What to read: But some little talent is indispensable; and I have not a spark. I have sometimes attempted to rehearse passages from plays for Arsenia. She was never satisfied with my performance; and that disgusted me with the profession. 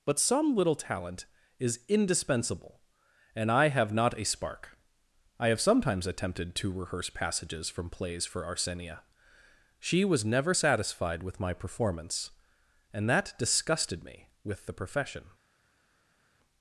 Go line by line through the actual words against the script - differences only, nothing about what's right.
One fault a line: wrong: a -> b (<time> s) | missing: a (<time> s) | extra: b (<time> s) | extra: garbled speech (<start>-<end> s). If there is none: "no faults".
no faults